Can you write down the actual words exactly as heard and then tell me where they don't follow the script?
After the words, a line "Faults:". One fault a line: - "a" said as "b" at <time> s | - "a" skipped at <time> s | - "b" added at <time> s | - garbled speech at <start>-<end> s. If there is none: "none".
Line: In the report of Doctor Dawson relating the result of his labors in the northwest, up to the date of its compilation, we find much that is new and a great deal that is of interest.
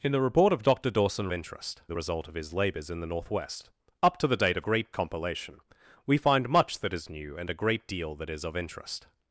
In the report of Doctor Dawson interest the result of his labors in the northwest, up to the date of great compilation, we find much that is new and a great deal that is of interest.
Faults:
- "relating" said as "interest" at 1.3 s
- "its" said as "great" at 4.7 s